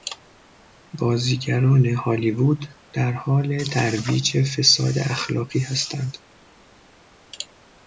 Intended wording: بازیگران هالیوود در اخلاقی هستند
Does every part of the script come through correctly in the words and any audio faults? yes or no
no